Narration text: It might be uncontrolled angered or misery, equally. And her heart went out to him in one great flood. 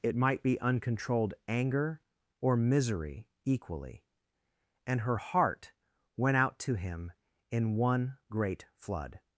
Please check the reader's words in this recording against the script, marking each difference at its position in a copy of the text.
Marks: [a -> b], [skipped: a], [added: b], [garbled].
It might be uncontrolled [angered -> anger] or misery, equally. And her heart went out to him in one great flood.